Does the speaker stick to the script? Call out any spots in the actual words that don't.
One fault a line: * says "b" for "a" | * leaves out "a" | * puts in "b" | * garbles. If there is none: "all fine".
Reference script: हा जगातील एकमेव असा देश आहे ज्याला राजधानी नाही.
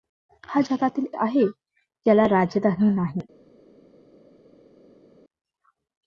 * leaves out "एकमेव असा देश"